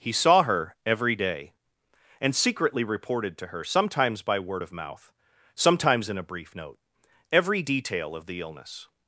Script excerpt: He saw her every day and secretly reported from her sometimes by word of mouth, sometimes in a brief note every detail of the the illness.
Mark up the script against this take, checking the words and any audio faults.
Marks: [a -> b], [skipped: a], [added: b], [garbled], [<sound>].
He saw her every day and secretly reported [from -> to] her sometimes by word of mouth, sometimes in a brief note every detail of the [skipped: the] illness.